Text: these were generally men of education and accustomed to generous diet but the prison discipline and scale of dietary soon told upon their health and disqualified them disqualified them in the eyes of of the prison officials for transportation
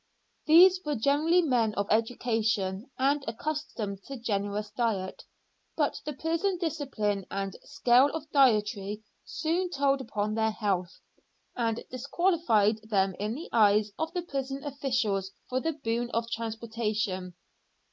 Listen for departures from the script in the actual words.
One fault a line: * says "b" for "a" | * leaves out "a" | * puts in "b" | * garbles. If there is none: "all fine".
* leaves out "disqualified them"
* leaves out "of"
* puts in "the boon of"